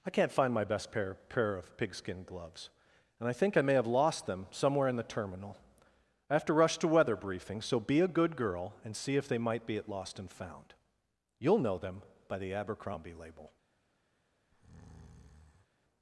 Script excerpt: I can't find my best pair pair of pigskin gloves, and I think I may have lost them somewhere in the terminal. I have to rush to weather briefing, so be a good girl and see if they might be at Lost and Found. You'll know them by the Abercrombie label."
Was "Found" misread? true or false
false